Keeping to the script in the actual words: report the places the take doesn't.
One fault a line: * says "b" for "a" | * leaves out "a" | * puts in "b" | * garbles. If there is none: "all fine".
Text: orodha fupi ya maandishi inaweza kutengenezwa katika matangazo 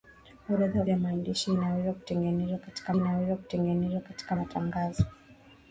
* leaves out "fupi"
* puts in "inaweza kutengenezwa katika"